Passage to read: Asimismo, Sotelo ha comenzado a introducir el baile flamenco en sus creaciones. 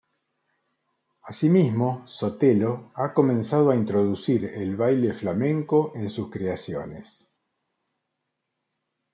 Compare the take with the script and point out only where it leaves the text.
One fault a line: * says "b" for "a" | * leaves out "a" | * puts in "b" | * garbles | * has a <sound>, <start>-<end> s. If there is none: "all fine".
all fine